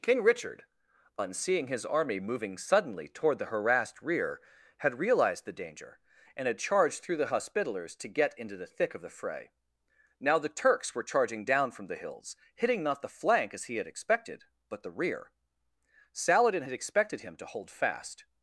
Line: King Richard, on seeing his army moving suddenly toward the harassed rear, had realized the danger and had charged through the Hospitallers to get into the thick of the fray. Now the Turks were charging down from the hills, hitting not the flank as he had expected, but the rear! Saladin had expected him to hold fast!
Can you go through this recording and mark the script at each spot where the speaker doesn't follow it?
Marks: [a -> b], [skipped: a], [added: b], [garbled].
King Richard, on seeing his army moving suddenly toward the harassed rear, had realized the danger and had charged through the Hospitallers to get into the thick of the fray. Now the Turks were charging down from the hills, hitting not the flank as he had expected, but the rear! Saladin had expected him to hold fast!